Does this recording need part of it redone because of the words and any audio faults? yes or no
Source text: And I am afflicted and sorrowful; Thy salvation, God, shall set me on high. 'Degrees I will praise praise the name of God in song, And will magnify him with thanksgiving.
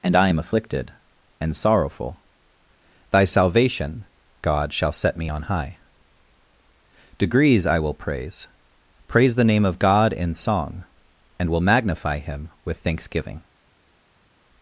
no